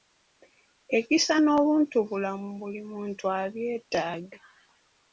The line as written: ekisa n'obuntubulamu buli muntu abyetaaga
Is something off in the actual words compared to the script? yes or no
no